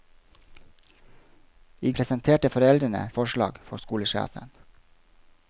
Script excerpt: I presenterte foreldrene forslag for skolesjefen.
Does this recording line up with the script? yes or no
yes